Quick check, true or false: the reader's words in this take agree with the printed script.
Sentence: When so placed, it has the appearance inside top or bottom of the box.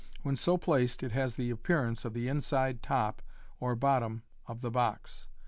false